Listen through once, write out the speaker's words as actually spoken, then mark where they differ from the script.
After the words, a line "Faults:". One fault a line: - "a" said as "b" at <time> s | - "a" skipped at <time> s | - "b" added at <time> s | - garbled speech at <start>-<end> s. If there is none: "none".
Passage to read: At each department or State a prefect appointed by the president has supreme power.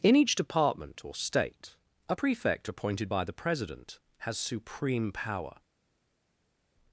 In each department or State a prefect appointed by the president has supreme power.
Faults:
- "At" said as "In" at 0.0 s